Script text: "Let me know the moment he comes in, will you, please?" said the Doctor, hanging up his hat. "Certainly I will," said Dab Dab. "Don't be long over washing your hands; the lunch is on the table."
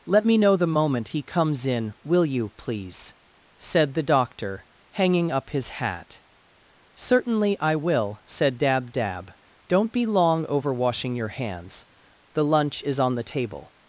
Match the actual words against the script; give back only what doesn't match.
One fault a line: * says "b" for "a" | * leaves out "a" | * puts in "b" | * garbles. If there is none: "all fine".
all fine